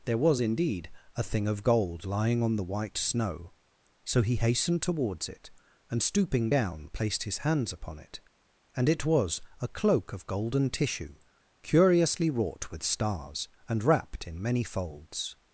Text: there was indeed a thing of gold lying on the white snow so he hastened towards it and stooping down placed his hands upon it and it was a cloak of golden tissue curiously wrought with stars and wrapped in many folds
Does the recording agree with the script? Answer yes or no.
yes